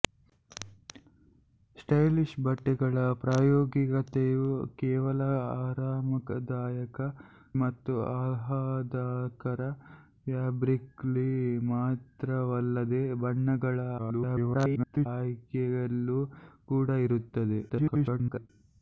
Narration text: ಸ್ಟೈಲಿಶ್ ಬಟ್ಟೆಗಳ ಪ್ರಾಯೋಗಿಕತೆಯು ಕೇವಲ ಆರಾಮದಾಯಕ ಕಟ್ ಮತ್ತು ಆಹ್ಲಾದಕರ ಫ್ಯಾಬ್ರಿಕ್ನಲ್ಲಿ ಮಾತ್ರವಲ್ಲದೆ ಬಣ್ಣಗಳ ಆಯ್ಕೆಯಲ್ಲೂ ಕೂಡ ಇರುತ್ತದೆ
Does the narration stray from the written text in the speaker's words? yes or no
yes